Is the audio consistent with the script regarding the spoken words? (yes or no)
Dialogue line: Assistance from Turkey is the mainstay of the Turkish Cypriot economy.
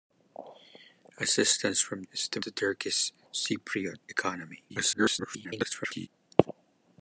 no